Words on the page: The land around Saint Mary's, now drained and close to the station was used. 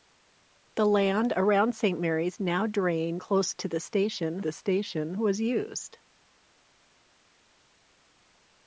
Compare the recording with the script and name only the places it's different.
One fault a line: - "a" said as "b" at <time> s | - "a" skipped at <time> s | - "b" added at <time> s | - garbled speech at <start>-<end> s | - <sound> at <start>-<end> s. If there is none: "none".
- "and" skipped at 3.2 s
- "the station" added at 4.4 s